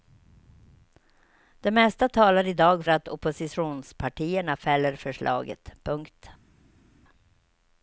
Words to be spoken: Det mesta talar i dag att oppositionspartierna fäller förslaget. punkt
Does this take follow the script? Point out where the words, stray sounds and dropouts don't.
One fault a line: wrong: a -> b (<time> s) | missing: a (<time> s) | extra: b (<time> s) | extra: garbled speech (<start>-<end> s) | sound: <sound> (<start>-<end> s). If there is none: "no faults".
no faults